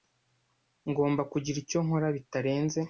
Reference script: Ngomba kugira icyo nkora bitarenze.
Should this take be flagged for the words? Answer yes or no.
no